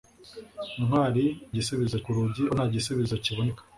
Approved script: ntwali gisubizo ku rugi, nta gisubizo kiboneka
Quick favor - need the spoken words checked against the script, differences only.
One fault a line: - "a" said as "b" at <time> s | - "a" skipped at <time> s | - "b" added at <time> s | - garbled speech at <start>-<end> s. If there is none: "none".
none